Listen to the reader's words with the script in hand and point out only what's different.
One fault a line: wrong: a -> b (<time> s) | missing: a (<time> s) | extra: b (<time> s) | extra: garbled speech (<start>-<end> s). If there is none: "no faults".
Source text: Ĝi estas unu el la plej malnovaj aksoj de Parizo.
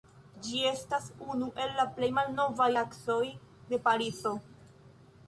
no faults